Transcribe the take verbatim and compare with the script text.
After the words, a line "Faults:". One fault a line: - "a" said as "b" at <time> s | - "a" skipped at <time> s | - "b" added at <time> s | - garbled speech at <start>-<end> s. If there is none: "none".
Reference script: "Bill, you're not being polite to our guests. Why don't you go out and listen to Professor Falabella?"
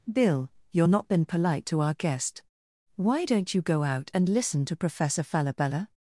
"Bill, you're not been polite to our guest. Why don't you go out and listen to Professor Falabella?"
Faults:
- "being" said as "been" at 1.1 s
- "guests" said as "guest" at 1.9 s